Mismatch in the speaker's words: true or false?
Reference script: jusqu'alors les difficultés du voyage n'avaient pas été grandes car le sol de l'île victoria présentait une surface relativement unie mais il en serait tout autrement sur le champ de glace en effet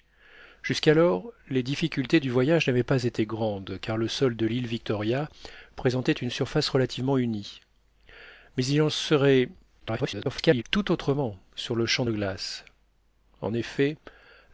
true